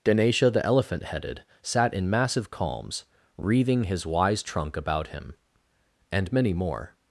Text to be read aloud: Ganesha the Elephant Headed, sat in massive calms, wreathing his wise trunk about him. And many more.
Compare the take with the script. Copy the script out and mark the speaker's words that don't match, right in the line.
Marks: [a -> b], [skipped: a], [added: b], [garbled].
Ganesha the Elephant Headed, sat in massive calms, wreathing his wise trunk about him. And many more.